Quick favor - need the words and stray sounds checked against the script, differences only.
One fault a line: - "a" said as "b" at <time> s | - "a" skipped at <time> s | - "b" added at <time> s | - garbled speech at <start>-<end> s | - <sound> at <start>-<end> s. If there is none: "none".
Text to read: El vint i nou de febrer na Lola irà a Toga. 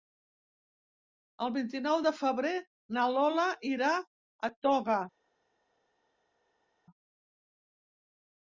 none